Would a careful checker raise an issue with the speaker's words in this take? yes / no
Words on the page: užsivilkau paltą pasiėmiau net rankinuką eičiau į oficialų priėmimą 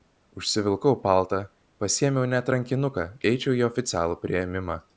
no